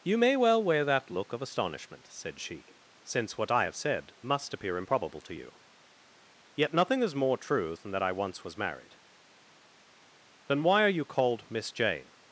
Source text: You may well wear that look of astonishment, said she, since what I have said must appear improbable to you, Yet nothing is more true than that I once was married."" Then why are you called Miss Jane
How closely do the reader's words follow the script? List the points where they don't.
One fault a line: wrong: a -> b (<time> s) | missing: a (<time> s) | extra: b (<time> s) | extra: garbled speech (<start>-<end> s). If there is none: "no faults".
no faults